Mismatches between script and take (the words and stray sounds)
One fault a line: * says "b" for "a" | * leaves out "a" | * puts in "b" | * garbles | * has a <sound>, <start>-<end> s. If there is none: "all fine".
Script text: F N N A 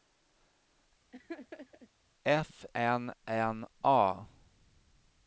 * has a laugh, 1.1-1.9 s